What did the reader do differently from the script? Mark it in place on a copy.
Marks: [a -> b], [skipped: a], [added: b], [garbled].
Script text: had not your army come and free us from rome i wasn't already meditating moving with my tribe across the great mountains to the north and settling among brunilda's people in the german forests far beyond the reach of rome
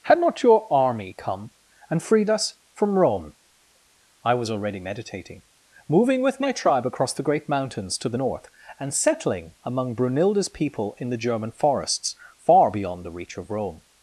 had not your army come and [free -> freed] us from rome i [wasn't -> was] already meditating moving with my tribe across the great mountains to the north and settling among brunilda's people in the german forests far beyond the reach of rome